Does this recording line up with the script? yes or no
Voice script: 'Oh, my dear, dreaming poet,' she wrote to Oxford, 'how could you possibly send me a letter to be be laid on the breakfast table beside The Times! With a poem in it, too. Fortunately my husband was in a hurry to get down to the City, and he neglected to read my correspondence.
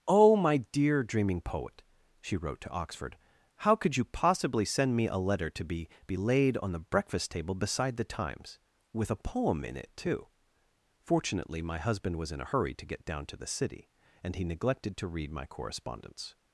yes